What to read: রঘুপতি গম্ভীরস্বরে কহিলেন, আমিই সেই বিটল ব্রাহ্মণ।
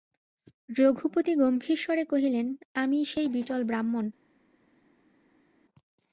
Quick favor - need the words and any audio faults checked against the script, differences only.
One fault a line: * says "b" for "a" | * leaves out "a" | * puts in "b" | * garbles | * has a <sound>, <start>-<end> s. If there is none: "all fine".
all fine